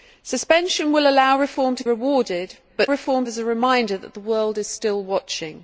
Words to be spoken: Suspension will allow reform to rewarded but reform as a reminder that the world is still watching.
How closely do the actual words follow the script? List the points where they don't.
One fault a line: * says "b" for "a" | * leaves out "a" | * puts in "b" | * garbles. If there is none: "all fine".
all fine